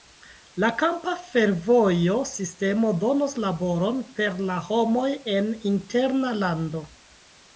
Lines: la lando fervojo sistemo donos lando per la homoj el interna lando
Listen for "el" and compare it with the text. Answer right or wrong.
wrong